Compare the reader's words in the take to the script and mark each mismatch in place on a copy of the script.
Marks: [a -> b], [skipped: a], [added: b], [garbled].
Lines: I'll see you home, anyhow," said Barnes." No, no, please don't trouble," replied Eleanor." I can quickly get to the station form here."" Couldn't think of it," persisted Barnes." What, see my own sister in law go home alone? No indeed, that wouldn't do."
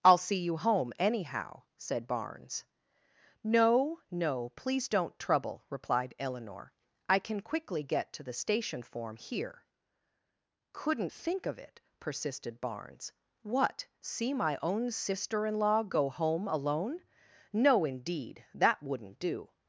I'll see you home, anyhow," said Barnes." No, no, please don't trouble," replied Eleanor." I can quickly get to the station form here."" Couldn't think of it," persisted Barnes." What, see my own sister in law go home alone? No indeed, that wouldn't do."